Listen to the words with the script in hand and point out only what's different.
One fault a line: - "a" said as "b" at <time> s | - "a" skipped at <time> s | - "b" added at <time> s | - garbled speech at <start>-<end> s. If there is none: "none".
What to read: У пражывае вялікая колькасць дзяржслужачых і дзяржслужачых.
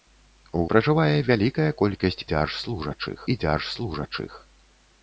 none